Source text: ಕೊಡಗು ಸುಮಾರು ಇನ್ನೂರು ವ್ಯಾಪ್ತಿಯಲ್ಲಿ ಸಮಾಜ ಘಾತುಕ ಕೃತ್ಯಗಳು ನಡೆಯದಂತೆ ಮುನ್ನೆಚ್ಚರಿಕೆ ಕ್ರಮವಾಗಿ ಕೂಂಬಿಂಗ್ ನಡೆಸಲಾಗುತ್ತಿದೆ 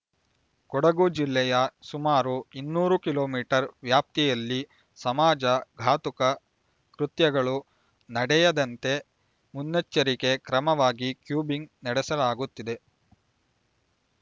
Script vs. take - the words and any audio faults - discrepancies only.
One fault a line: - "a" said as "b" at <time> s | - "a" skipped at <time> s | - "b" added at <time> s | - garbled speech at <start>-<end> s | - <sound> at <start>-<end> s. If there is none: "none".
- "ಜಿಲ್ಲೆಯ" added at 1.2 s
- "ಕಿಲೋ ಮೀಟರ್" added at 3.0 s